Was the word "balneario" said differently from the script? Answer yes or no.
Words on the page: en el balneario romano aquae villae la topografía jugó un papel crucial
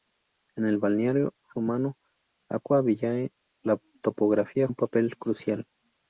no